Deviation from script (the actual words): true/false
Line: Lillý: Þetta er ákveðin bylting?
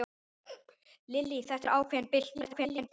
true